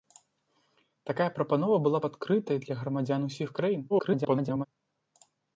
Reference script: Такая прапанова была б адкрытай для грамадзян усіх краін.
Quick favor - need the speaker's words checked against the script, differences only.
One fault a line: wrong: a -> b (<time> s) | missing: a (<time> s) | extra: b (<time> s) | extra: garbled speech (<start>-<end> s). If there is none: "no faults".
extra: garbled speech (3.9-4.7 s)